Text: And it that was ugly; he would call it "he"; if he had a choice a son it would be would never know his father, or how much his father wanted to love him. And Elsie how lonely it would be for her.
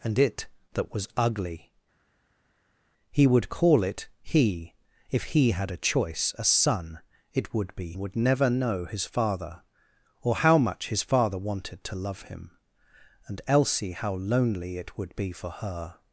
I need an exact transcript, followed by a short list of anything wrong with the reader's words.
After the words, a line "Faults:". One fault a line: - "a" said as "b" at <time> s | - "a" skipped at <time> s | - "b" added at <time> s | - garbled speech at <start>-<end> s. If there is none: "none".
And it that was ugly; he would call it "he"; if he had a choice a son it would be would never know his father, or how much his father wanted to love him. And Elsie how lonely it would be for her.
Faults:
none